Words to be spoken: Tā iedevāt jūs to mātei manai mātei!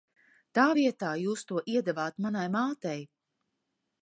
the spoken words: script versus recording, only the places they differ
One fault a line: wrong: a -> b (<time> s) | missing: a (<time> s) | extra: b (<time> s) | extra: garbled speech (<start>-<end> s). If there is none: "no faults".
wrong: iedevāt -> vietā (0.8 s)
wrong: mātei -> iedevāt (1.7 s)